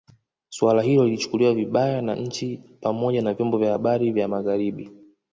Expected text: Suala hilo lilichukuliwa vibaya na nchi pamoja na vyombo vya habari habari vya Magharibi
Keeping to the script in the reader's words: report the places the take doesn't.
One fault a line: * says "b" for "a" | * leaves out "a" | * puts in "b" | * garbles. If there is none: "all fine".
* leaves out "habari"